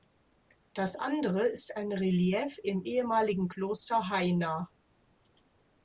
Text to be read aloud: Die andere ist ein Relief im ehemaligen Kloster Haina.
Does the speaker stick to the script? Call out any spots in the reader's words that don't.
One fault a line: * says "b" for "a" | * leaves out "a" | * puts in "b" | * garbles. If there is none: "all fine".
* says "Das" for "Die"